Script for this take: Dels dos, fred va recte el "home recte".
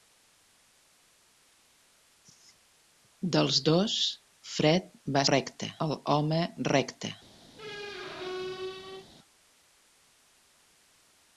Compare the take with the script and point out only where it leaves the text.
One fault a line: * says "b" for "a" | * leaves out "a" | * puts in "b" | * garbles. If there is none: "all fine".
all fine